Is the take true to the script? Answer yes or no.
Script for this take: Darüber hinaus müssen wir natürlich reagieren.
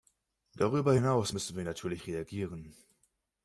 yes